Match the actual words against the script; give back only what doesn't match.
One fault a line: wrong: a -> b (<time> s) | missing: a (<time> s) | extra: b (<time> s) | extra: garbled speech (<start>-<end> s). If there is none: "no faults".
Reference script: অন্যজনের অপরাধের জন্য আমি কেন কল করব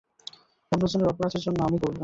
missing: কেন কল (1.8 s)